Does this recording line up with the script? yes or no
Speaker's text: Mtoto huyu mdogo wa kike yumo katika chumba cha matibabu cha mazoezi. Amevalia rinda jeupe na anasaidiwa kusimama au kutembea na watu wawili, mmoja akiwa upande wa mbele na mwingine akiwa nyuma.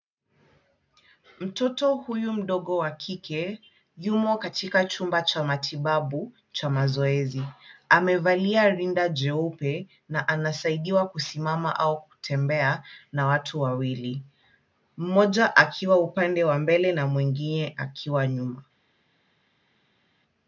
yes